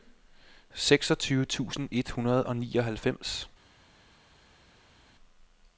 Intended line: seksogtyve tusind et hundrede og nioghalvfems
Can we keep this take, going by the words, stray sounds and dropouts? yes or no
yes